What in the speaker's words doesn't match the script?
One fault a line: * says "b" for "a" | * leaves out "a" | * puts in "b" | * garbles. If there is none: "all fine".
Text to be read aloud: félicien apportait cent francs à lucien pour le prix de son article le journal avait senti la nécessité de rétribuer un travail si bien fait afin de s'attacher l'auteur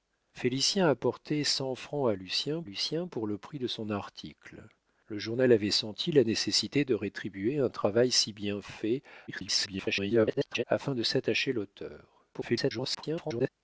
* puts in "lucien"
* garbles
* garbles